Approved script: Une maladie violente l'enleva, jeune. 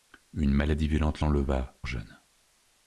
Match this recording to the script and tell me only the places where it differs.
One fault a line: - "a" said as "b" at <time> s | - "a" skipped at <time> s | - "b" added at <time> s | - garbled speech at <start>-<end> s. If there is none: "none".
none